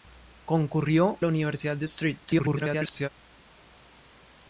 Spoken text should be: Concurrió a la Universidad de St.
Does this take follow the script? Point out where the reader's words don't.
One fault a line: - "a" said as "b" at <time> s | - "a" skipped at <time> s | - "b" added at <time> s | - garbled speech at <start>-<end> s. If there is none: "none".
- "a" skipped at 1.2 s
- garbled speech at 2.3-3.1 s